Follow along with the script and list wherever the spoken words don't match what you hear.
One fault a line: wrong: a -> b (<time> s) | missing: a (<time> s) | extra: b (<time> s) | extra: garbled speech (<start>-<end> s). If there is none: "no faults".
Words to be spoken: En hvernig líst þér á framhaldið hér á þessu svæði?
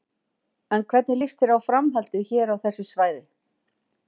no faults